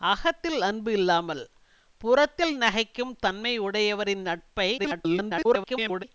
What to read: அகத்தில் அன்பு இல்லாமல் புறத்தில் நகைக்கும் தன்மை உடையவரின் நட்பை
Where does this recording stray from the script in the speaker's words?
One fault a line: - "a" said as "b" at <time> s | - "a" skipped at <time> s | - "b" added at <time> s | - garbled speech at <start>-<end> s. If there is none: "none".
- garbled speech at 4.8-6.0 s